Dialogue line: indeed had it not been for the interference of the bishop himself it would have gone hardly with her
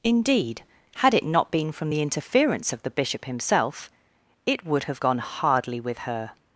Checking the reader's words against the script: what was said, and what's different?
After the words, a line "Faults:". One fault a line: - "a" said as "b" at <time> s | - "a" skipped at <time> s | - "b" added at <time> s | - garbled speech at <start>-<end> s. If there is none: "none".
indeed had it not been from the interference of the bishop himself it would have gone hardly with her
Faults:
- "for" said as "from" at 1.7 s